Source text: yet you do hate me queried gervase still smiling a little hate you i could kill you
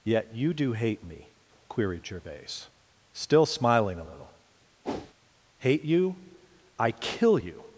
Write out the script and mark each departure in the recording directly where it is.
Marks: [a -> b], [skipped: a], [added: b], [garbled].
yet you do hate me queried gervase still smiling a little hate you i [skipped: could] kill you